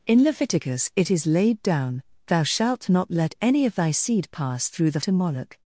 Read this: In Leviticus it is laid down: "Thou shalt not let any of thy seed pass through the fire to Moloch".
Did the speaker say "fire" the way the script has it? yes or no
no